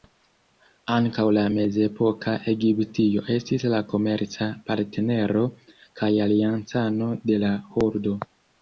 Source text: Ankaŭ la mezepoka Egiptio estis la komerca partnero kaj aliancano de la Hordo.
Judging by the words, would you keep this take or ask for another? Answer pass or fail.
pass